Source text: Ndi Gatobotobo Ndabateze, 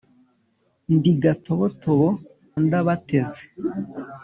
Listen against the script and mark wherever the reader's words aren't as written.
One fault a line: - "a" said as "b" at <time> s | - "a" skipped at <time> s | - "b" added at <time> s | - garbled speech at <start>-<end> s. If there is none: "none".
none